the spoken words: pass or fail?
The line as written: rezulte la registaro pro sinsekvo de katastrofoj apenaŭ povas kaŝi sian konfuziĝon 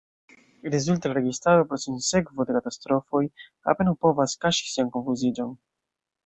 pass